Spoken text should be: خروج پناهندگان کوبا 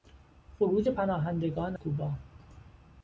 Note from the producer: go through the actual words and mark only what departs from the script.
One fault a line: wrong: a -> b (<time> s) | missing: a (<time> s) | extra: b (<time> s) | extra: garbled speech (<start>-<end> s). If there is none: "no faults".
no faults